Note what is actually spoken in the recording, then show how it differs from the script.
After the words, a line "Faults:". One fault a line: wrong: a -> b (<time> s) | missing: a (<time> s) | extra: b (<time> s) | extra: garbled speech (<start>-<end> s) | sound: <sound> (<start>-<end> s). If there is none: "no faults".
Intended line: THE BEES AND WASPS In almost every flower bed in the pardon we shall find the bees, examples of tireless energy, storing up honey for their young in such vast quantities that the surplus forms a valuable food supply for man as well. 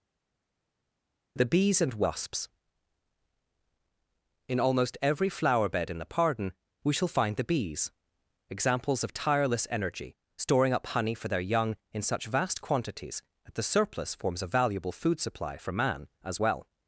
THE BEES AND WASPS In almost every flower bed in the pardon we shall find the bees, examples of tireless energy, storing up honey for their young in such vast quantities that the surplus forms a valuable food supply for man as well.
Faults:
no faults